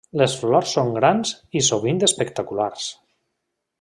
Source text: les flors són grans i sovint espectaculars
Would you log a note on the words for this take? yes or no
no